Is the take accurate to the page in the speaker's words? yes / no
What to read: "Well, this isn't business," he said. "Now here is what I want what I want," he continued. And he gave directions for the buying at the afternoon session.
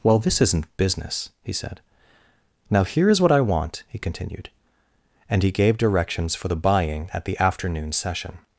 no